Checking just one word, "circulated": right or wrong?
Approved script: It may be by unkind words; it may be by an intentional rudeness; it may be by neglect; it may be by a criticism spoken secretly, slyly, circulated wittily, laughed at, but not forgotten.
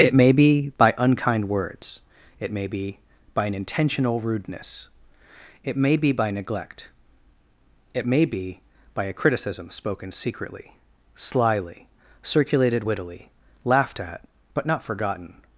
right